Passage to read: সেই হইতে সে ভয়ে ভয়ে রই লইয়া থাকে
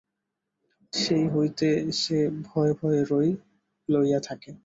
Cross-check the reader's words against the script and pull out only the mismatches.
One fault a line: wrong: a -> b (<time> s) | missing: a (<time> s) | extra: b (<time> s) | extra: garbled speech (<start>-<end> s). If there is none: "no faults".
no faults